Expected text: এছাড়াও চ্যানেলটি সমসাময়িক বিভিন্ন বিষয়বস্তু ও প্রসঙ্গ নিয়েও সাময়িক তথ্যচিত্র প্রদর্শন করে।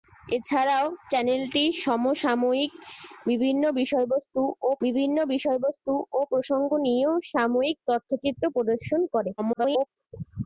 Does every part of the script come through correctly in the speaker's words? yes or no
no